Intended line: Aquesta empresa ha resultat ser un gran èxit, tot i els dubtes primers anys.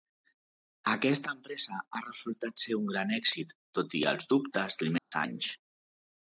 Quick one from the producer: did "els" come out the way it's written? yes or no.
yes